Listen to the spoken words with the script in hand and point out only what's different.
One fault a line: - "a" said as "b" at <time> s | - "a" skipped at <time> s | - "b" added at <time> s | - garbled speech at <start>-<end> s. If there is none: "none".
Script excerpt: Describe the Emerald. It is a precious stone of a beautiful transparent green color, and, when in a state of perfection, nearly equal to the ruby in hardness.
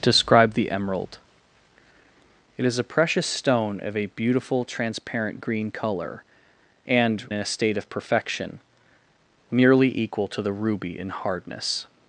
- "when" skipped at 7.2 s